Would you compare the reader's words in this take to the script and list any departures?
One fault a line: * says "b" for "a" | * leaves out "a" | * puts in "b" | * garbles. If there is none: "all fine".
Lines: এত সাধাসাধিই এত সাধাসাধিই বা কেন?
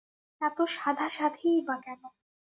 * leaves out "এত সাধাসাধিই"